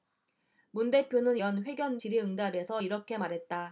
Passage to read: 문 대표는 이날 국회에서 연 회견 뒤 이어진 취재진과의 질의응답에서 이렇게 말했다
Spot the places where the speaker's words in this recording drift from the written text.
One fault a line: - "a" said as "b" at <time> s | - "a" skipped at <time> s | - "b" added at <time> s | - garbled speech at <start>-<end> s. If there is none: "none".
- "이날 국회에서" skipped at 1.4 s
- "뒤 이어진 취재진과의" skipped at 2.0 s